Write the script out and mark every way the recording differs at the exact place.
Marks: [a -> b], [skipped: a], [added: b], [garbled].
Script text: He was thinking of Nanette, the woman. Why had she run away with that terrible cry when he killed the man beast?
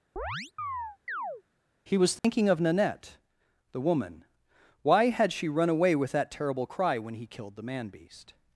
He was thinking of Nanette, the woman. Why had she run away with that terrible cry when he killed the man beast?